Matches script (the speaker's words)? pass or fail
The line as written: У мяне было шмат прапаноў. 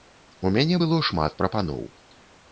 pass